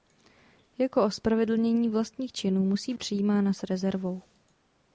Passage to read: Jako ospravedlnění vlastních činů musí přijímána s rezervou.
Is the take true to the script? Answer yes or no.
yes